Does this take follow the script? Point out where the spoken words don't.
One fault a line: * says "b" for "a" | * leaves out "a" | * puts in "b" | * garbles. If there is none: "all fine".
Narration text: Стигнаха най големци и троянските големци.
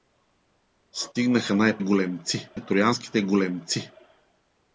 all fine